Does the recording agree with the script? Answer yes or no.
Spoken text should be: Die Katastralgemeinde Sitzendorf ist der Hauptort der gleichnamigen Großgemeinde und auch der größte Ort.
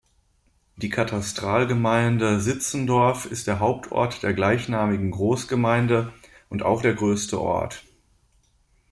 yes